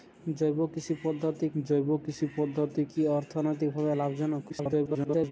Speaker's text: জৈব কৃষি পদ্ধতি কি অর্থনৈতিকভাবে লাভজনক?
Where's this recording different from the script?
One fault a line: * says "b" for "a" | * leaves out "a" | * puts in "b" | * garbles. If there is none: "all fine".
* puts in "জৈব কৃষি পদ্ধতি"
* garbles